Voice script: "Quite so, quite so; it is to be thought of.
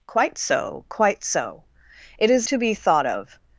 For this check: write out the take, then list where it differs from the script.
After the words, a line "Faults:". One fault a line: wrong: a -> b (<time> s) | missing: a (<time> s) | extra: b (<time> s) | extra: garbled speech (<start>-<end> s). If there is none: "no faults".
"Quite so, quite so; it is to be thought of.
Faults:
no faults